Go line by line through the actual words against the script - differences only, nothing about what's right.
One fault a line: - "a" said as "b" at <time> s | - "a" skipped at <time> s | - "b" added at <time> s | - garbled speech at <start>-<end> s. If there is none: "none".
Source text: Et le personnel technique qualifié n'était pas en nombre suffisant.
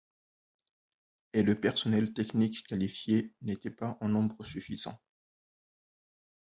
none